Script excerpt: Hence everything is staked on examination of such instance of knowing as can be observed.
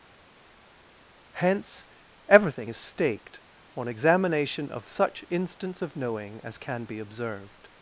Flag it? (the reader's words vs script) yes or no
no